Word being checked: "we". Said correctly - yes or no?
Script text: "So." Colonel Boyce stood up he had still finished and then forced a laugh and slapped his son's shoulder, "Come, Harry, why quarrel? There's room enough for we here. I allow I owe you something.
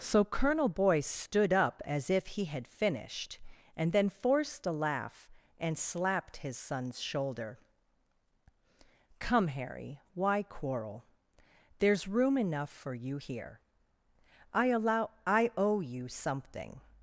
no